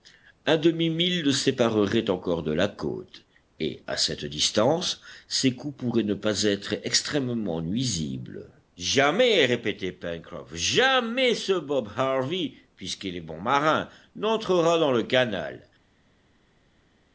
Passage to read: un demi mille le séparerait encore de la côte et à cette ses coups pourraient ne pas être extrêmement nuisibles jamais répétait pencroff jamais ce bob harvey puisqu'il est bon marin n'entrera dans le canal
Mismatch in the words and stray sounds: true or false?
true